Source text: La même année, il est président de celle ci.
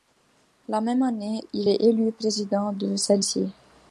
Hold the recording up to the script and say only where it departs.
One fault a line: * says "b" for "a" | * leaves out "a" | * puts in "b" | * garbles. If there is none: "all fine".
* puts in "élu"